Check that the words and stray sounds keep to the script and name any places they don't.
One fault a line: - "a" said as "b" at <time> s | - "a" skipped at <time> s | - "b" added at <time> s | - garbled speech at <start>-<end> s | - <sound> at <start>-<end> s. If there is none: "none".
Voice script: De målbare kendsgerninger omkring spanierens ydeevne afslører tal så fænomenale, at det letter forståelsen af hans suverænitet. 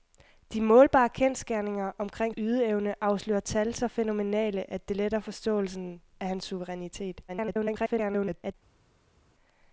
- "spanierens" skipped at 2.4 s
- garbled speech at 7.3-8.5 s